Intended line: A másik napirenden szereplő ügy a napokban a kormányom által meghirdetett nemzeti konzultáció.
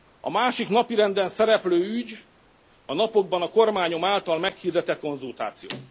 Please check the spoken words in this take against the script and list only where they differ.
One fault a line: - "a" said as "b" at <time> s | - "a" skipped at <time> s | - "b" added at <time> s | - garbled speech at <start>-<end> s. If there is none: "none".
- "nemzeti" skipped at 5.0 s